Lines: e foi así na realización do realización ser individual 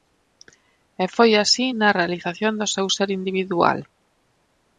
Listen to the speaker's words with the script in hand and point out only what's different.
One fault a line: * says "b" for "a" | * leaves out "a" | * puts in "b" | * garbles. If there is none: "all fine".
* says "seu" for "realización"